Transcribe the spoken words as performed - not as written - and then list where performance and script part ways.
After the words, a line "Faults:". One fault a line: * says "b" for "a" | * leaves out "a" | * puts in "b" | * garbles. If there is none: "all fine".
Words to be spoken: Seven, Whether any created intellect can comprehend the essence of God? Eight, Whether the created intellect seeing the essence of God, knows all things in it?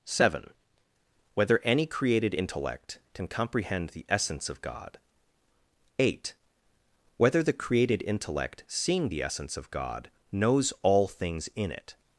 Seven, Whether any created intellect can comprehend the essence of God? Eight, Whether the created intellect seeing the essence of God, knows all things in it?
Faults:
all fine